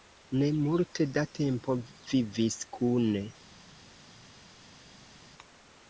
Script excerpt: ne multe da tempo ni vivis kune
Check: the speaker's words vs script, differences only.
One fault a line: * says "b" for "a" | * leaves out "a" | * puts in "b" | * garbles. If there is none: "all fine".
* leaves out "ni"